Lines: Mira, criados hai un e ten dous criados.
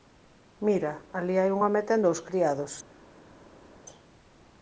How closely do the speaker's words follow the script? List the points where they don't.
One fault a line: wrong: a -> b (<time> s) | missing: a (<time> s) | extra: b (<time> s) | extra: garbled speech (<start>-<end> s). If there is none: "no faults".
wrong: criados -> alí (1.2 s)
extra: home (1.6 s)